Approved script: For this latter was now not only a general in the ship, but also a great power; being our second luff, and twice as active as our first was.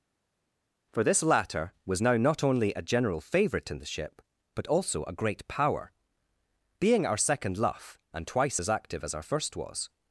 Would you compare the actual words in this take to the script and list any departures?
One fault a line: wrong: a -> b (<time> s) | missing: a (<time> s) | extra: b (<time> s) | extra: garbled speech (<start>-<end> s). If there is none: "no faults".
extra: favourite (3.2 s)